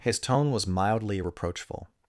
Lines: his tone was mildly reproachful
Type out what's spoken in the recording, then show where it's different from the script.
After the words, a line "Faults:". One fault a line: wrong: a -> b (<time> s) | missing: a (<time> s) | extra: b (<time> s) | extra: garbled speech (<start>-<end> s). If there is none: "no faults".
his tone was mildly reproachful
Faults:
no faults